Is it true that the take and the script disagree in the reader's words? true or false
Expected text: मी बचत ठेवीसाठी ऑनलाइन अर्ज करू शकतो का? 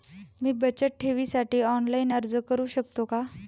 false